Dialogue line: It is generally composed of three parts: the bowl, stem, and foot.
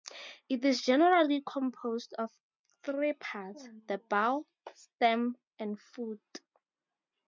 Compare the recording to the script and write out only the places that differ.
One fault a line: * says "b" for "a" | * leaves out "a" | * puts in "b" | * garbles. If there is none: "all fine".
all fine